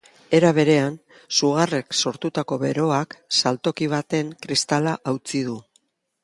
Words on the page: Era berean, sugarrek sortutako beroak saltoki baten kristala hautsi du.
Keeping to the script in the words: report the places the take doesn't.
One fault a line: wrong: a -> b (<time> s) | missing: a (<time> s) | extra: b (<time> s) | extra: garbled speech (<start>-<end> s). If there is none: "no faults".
no faults